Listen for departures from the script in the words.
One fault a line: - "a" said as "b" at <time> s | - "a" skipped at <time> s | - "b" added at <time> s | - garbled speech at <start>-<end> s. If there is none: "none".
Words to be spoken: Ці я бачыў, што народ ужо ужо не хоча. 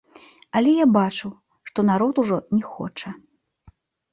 - "Ці" said as "Але" at 0.6 s
- "ужо" skipped at 2.4 s